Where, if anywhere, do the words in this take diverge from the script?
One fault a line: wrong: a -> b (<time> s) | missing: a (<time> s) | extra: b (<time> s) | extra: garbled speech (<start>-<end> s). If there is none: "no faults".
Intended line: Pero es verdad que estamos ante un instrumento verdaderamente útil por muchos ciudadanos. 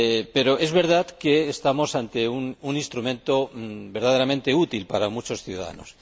wrong: por -> para (4.9 s)